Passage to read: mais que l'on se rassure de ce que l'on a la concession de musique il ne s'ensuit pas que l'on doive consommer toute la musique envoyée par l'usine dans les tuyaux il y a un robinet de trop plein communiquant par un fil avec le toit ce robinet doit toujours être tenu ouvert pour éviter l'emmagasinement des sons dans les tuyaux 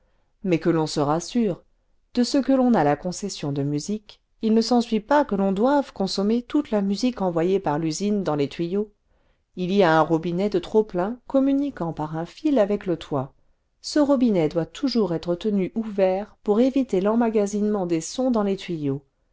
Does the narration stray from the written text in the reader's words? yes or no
no